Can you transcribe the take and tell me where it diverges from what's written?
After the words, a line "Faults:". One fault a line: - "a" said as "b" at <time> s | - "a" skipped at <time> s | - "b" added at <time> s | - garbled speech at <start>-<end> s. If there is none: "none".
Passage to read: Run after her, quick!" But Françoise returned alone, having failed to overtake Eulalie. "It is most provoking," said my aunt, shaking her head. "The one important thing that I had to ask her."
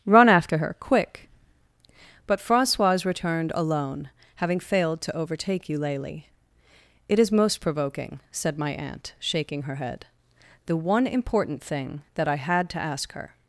Run after her, quick!" But Françoise returned alone, having failed to overtake Eulalie. "It is most provoking," said my aunt, shaking her head. "The one important thing that I had to ask her."
Faults:
none